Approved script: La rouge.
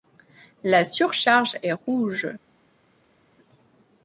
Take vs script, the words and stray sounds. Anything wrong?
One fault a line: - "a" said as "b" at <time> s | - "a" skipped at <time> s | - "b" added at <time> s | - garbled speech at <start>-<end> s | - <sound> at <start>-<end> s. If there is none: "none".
- "surcharge est" added at 0.8 s